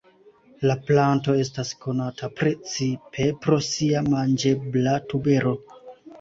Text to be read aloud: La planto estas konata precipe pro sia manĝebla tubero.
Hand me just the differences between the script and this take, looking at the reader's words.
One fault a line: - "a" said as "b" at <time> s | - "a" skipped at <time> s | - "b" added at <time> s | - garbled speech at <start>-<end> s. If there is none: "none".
none